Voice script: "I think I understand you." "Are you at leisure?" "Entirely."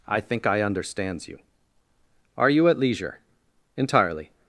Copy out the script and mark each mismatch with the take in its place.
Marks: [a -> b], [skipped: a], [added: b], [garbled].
"I think I [understand -> understands] you." "Are you at leisure?" "Entirely."